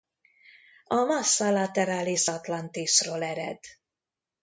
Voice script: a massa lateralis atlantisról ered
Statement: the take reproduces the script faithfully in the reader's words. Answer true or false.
true